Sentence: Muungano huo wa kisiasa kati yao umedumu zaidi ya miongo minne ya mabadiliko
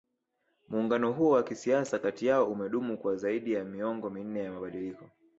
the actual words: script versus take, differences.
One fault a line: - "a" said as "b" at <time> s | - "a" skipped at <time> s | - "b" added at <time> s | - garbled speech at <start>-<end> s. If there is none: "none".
- "kwa" added at 3.0 s